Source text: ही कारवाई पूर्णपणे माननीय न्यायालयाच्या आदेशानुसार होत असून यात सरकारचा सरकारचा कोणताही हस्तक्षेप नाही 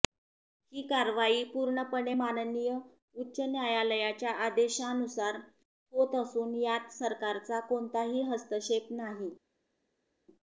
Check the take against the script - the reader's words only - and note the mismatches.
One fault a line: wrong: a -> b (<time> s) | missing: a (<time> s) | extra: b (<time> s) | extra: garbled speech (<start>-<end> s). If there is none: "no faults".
extra: उच्च (3.2 s)
missing: सरकारचा (7.6 s)